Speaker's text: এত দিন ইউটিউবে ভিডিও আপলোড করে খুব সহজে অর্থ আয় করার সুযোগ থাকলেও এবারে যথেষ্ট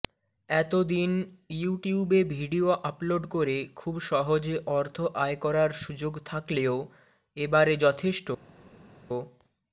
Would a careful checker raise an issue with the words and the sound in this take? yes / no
no